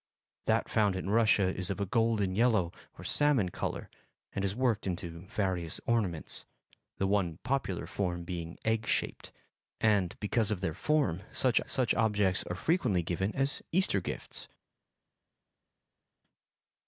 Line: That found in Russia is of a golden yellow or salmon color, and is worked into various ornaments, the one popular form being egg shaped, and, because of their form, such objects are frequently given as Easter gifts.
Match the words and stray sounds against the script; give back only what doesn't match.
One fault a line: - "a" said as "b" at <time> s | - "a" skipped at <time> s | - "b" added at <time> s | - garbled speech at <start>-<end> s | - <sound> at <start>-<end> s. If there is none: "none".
- "such" added at 11.6 s